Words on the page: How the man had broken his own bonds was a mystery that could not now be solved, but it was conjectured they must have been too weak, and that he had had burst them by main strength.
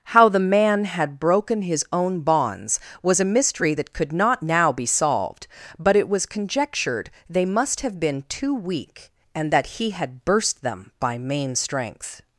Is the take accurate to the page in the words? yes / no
no